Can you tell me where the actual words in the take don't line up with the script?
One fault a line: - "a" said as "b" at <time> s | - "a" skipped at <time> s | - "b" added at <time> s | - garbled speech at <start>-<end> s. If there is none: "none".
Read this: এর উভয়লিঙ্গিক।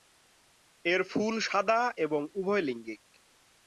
- "ফুল সাদা এবং" added at 1.0 s